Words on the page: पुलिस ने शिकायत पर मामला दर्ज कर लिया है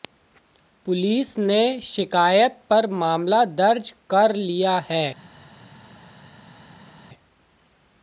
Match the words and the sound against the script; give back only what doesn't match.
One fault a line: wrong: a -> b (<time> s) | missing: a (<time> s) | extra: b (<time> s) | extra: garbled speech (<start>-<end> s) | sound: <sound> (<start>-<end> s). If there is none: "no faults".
no faults